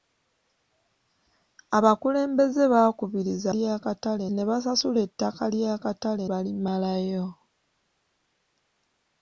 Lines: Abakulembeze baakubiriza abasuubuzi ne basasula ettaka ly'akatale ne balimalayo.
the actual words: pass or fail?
fail